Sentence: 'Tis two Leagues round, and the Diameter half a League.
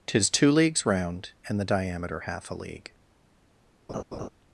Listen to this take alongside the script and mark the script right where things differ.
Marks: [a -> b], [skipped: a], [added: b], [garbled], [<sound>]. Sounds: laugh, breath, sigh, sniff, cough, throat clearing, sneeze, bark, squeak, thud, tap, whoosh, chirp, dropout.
'Tis two Leagues round, and the Diameter half a League. [laugh]